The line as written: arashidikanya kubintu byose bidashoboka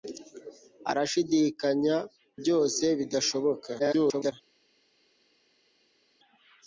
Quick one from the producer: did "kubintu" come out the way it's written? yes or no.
no